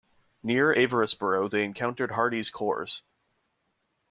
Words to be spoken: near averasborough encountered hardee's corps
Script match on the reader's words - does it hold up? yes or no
no